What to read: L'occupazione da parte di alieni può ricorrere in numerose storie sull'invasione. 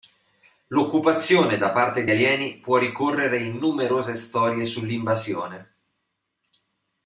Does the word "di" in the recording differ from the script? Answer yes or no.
yes